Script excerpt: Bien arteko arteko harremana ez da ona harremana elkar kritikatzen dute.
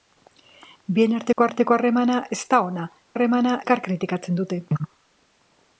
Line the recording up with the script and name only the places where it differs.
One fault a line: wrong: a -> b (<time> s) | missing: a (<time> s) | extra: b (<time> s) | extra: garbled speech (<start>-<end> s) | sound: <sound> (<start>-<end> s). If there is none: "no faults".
sound: dropout (1.3-1.4 s)